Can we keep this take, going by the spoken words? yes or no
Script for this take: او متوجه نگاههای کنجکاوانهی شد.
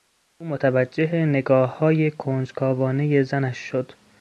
no